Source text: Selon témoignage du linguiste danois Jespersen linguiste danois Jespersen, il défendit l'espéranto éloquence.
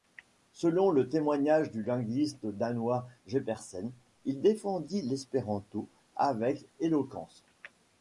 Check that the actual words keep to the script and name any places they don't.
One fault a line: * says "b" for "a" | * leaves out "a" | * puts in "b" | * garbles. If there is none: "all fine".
* puts in "le"
* leaves out "linguiste danois Jespersen"
* puts in "avec"